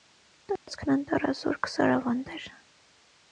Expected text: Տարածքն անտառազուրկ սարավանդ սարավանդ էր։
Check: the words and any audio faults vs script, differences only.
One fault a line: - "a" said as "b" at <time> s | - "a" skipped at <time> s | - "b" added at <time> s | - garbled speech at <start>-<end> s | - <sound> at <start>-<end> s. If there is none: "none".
- dropout at 0.6-0.7 s
- "սարավանդ" skipped at 2.4 s